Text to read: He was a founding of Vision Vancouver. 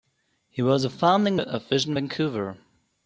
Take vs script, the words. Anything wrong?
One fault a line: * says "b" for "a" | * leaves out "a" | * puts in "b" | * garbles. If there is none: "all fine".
all fine